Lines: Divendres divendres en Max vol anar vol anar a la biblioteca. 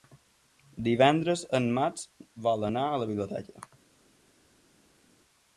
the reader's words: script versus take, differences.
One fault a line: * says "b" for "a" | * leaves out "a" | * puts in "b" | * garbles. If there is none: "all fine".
* leaves out "divendres"
* leaves out "vol anar"